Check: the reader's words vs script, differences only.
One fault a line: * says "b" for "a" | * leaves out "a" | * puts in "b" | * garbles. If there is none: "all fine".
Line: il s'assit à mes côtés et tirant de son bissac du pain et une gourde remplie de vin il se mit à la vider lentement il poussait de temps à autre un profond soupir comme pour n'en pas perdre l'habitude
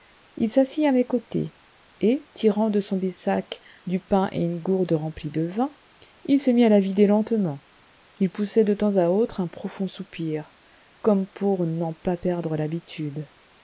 all fine